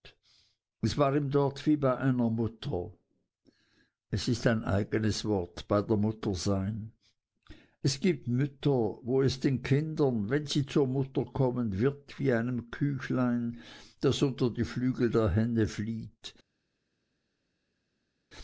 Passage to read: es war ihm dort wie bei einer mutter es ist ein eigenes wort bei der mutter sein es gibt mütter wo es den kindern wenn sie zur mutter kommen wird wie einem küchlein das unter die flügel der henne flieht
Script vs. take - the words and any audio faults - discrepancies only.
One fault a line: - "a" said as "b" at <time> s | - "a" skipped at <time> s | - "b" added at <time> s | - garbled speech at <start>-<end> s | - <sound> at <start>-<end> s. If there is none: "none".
none